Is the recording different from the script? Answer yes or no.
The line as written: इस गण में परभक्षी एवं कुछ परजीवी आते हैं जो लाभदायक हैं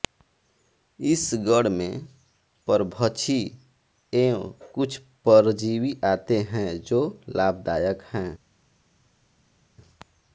no